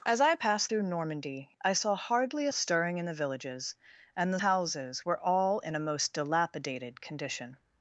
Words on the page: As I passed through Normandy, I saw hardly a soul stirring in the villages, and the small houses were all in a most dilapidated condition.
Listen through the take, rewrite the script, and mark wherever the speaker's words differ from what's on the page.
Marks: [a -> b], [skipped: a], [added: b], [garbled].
As I passed through Normandy, I saw hardly a [skipped: soul] stirring in the villages, and the [skipped: small] houses were all in a most dilapidated condition.